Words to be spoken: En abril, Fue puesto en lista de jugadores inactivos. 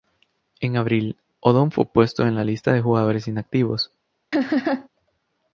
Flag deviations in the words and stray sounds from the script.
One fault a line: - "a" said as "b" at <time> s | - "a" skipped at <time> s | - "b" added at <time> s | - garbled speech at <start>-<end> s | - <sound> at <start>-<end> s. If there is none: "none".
- "Odom" added at 1.4 s
- "la" added at 2.3 s
- laugh at 4.3-4.9 s